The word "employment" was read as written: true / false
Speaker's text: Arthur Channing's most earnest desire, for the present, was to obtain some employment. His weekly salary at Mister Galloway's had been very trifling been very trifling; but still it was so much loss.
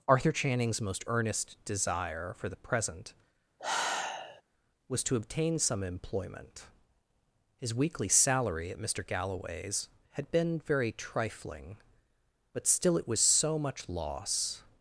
true